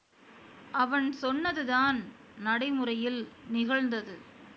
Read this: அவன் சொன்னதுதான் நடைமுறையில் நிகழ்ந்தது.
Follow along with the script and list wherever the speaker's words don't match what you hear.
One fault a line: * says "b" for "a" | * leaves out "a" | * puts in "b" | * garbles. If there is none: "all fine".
all fine